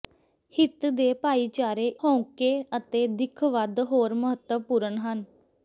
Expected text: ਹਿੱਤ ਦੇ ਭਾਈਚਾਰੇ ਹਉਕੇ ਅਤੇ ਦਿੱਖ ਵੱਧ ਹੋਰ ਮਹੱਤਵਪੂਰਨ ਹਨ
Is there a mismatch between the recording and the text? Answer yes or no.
no